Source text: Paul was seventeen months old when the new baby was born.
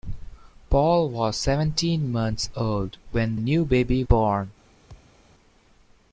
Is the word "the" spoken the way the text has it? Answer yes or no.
no